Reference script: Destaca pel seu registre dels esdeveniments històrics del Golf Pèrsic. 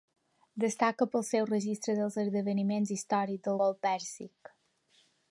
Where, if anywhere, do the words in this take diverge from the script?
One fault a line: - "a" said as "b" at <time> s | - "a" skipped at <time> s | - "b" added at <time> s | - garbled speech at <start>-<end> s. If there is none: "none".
none